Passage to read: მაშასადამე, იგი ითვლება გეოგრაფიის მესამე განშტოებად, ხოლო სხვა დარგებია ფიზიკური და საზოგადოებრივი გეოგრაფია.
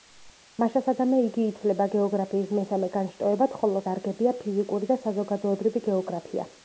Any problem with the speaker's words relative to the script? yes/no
yes